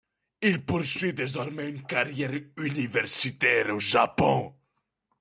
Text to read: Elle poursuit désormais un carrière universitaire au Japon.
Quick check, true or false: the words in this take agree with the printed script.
false